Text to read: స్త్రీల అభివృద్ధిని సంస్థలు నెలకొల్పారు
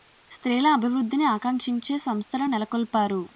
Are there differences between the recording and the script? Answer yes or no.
yes